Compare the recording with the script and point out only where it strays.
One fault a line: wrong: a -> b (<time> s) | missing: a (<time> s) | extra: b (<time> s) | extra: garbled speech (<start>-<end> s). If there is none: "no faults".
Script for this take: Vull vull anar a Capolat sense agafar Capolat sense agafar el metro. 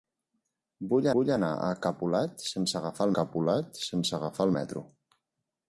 no faults